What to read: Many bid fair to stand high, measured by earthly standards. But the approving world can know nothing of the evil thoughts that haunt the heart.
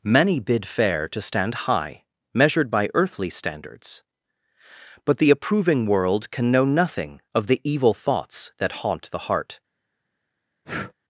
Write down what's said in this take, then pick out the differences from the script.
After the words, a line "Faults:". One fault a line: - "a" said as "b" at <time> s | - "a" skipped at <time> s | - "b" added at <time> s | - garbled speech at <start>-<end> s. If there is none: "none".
Many bid fair to stand high, measured by earthly standards. But the approving world can know nothing of the evil thoughts that haunt the heart.
Faults:
none